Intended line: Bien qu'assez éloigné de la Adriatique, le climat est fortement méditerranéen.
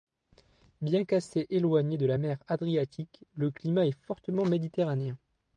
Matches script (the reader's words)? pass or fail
fail